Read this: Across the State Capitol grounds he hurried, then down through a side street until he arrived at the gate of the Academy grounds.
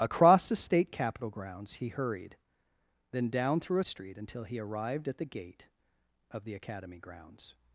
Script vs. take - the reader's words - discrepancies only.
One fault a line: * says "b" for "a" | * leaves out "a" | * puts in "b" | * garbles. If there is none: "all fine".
* leaves out "side"